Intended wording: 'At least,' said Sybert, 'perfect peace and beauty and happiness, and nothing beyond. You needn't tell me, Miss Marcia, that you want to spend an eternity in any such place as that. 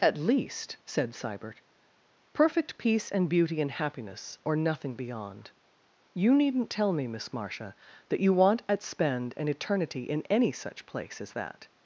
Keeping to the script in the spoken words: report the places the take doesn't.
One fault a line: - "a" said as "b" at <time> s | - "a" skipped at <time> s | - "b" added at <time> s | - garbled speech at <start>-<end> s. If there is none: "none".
- "and" said as "or" at 4.4 s
- "to" said as "at" at 8.7 s